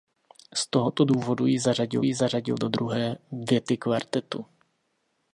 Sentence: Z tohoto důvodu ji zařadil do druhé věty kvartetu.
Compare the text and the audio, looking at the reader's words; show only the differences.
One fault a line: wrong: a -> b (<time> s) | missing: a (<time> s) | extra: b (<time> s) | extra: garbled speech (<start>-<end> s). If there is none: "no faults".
extra: ji zařadil (2.0 s)